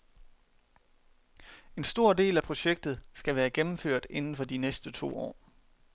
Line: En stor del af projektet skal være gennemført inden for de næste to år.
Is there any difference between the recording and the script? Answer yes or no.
no